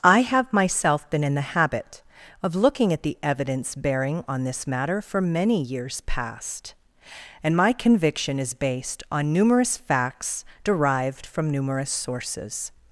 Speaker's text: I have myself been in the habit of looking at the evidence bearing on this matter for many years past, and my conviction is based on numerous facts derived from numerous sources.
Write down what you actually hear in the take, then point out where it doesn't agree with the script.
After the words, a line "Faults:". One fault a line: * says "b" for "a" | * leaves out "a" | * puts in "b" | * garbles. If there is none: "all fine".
I have myself been in the habit of looking at the evidence bearing on this matter for many years past, and my conviction is based on numerous facts derived from numerous sources.
Faults:
all fine